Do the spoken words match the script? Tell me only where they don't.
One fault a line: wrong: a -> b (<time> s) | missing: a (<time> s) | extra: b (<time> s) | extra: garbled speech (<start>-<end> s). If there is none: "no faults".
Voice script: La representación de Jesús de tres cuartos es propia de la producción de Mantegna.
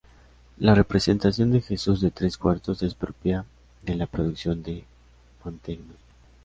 no faults